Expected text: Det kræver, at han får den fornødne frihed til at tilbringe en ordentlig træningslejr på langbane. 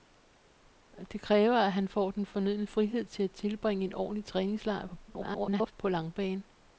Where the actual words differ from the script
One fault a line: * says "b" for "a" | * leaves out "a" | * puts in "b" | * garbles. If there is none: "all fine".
* garbles